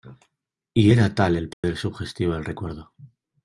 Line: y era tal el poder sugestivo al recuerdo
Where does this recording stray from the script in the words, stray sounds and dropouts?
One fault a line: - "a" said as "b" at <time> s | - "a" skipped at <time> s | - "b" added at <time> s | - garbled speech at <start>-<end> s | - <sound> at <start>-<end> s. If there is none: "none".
- dropout at 1.5-1.6 s
- "al" said as "del" at 2.3 s